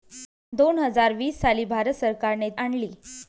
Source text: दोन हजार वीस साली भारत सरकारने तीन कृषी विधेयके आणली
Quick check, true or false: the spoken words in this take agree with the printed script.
false